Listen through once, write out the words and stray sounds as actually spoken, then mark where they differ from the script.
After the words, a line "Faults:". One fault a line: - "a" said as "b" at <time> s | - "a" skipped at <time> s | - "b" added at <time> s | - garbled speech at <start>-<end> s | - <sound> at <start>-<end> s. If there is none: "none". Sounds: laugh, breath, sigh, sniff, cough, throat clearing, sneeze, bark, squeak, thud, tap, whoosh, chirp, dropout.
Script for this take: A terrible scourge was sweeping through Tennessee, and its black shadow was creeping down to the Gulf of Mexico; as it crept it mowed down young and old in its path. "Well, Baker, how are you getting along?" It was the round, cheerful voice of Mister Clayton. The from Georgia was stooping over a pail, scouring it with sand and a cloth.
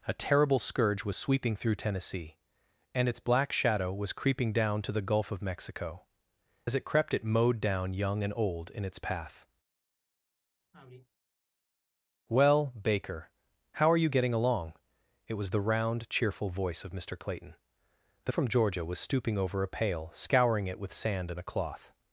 A terrible scourge was sweeping through Tennessee, and its black shadow was creeping down to the Gulf of Mexico; as it crept it mowed down young and old in its path. "Well, Baker, how are you getting along?" It was the round, cheerful voice of Mister Clayton. The from Georgia was stooping over a pail, scouring it with sand and a cloth.
Faults:
- sigh at 10.7-11.1 s